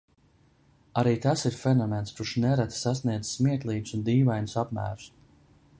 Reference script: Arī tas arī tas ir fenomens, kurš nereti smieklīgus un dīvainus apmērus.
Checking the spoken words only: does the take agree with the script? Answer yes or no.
no